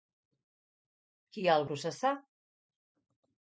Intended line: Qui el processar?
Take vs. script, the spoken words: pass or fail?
pass